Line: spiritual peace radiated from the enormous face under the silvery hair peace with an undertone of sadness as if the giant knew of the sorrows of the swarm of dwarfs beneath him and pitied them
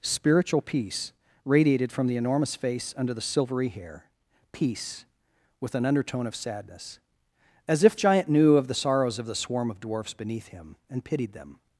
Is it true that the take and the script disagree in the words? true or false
true